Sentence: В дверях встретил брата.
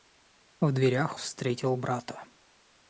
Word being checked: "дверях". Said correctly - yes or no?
yes